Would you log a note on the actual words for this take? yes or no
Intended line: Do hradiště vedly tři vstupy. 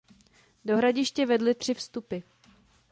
no